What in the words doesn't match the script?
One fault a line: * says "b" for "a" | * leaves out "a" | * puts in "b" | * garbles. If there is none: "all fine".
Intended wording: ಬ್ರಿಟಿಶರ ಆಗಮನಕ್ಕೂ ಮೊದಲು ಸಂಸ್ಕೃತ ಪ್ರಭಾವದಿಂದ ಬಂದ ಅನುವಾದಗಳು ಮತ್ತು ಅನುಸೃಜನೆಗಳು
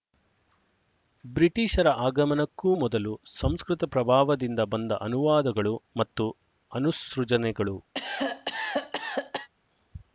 all fine